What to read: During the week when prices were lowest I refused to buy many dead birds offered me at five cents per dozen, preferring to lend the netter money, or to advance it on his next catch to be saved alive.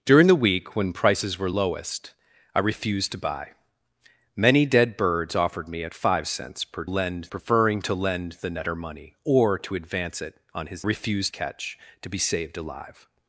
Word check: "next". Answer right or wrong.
wrong